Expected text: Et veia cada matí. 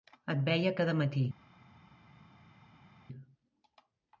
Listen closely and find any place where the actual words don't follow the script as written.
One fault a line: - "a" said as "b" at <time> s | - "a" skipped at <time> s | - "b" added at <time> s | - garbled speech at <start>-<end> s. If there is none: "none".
none